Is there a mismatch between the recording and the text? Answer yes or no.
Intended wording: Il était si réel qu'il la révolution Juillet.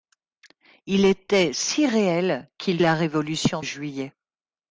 no